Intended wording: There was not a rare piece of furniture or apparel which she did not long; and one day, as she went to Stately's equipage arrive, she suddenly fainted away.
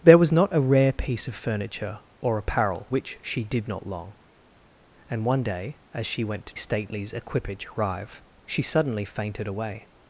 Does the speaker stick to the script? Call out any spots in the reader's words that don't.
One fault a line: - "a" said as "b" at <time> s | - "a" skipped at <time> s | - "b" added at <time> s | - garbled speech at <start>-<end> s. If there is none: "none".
none